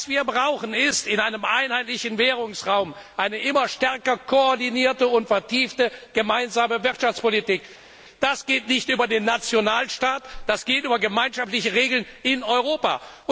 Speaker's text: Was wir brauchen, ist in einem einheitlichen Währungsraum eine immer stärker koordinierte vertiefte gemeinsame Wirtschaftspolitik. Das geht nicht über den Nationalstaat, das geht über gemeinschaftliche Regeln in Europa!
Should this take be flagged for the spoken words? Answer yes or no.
yes